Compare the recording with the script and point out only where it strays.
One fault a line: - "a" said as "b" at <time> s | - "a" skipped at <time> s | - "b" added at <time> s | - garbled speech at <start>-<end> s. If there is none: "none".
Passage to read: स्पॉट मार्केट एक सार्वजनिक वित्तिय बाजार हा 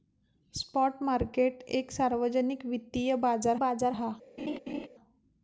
- "बाजार" added at 3.6 s